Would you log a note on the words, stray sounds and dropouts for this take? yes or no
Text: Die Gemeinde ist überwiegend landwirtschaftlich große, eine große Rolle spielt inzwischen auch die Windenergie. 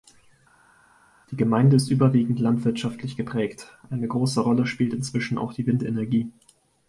yes